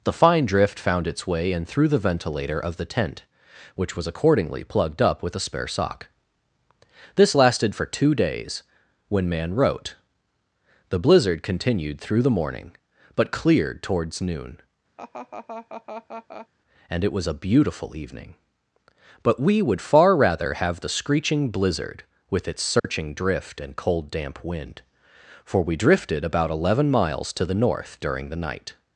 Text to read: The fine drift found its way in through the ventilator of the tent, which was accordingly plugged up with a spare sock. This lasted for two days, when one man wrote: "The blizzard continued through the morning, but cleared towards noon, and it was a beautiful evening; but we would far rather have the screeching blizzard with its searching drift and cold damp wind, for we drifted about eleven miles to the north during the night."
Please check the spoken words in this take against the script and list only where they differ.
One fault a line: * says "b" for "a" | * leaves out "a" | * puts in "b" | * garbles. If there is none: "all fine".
* leaves out "one"